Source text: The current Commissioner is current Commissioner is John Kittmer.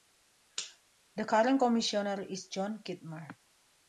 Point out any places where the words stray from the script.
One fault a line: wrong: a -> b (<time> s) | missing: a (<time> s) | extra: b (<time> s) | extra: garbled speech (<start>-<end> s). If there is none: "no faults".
missing: current Commissioner is (2.5 s)